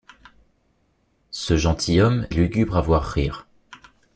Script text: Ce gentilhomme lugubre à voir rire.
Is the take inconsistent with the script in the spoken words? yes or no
no